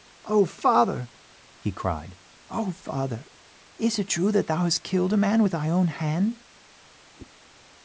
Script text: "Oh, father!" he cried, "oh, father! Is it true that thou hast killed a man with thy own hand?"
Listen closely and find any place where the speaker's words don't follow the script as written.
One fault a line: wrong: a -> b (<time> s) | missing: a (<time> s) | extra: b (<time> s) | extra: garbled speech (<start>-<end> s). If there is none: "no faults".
no faults